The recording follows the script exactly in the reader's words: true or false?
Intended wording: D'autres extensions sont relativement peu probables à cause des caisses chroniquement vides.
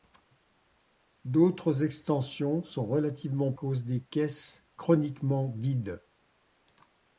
false